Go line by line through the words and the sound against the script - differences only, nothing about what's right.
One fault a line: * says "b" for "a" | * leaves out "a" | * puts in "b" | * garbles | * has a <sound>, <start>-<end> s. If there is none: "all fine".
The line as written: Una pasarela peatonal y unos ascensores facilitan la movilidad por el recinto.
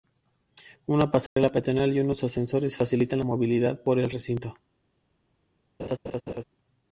* has a dropout, 1.3-1.4 s
* has a laugh, 5.8-6.4 s